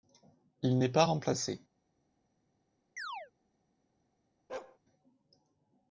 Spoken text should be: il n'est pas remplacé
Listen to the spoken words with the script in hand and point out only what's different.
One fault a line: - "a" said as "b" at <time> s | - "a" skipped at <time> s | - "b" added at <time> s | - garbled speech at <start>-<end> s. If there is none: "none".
none